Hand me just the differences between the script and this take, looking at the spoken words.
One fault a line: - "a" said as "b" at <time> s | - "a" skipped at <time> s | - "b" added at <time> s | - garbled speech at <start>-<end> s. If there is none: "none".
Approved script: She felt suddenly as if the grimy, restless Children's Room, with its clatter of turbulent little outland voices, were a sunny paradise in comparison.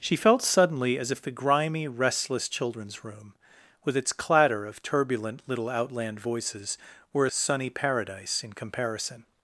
none